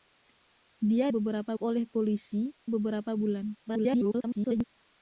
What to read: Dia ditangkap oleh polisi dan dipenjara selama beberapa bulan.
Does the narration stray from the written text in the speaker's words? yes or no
yes